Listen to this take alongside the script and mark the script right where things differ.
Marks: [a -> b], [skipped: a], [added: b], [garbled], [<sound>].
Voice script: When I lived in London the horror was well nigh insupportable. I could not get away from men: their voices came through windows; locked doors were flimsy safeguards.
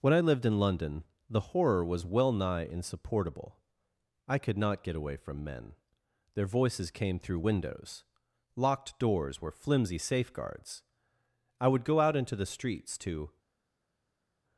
When I lived in London the horror was well nigh insupportable. I could not get away from men: their voices came through windows; locked doors were flimsy safeguards. [added: I would go out into the streets to]